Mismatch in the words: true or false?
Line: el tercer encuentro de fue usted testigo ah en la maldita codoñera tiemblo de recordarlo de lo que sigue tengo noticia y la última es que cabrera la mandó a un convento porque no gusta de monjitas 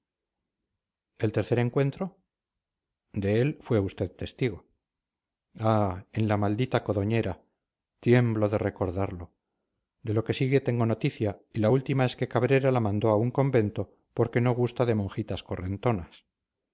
true